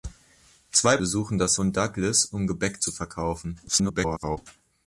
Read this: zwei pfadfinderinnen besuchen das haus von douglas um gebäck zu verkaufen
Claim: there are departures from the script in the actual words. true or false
true